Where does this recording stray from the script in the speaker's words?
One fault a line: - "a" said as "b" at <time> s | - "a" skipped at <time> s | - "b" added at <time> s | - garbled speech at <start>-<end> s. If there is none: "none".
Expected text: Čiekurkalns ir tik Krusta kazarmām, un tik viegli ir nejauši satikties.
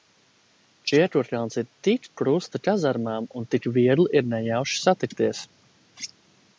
none